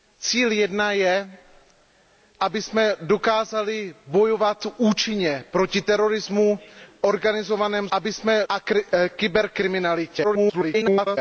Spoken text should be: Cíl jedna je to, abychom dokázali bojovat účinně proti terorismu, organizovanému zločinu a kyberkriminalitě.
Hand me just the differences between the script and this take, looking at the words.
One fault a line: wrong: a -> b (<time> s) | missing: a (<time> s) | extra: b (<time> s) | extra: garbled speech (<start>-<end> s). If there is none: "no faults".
missing: to (1.4 s)
wrong: zločinu -> abychom (7.9 s)
extra: garbled speech (10.2-11.2 s)